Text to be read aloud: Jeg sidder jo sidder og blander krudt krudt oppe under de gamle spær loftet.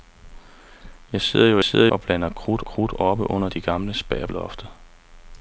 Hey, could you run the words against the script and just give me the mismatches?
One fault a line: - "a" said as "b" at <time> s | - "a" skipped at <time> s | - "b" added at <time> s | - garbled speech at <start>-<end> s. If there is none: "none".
none